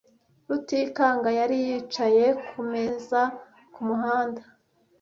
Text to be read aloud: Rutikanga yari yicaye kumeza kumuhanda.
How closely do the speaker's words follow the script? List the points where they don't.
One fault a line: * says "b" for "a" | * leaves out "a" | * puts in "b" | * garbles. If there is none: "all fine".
all fine